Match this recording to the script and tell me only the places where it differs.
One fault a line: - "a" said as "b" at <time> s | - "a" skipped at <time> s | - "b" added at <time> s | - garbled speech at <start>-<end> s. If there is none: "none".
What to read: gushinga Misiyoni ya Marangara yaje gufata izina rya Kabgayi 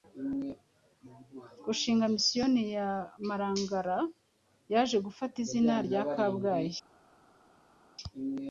none